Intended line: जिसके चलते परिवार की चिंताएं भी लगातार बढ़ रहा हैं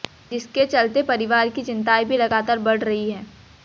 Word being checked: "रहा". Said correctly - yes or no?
no